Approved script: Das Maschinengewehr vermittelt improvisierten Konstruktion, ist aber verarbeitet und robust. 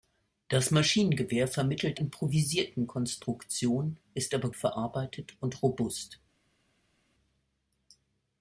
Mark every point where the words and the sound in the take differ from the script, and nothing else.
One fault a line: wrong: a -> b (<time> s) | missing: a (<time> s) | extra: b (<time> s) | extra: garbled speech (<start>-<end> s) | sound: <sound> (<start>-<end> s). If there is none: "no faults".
no faults